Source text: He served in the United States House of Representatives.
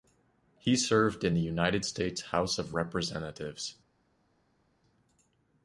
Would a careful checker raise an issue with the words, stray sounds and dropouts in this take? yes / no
no